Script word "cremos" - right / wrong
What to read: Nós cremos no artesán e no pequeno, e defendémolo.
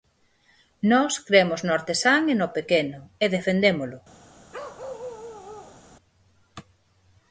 right